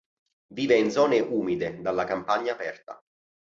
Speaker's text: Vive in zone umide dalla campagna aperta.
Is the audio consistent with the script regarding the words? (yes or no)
yes